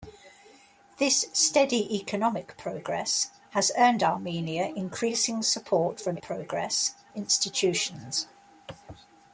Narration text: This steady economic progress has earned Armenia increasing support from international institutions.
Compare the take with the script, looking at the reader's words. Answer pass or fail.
fail